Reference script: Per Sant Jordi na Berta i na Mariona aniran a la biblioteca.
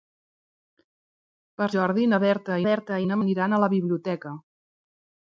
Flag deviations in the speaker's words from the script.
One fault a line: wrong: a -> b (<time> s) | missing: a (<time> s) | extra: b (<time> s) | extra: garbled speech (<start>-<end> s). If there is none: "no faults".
missing: Sant (1.7 s)
extra: Berta (2.7 s)
missing: Mariona (3.2 s)